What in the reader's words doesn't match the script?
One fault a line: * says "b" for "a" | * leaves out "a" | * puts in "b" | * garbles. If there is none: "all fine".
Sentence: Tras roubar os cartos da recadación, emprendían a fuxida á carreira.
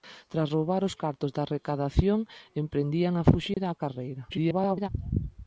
* garbles